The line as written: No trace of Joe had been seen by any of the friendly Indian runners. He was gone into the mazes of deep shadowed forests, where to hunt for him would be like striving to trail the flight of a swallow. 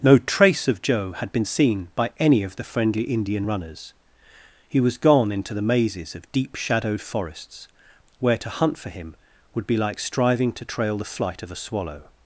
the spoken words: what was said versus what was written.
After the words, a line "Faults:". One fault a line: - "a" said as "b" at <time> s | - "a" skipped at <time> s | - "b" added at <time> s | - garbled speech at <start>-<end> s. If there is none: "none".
No trace of Joe had been seen by any of the friendly Indian runners. He was gone into the mazes of deep shadowed forests, where to hunt for him would be like striving to trail the flight of a swallow.
Faults:
none